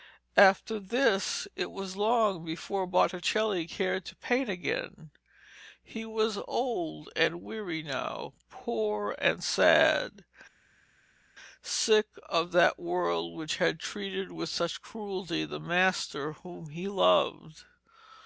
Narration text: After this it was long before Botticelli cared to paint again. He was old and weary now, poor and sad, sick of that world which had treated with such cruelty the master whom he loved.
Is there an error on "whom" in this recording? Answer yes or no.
no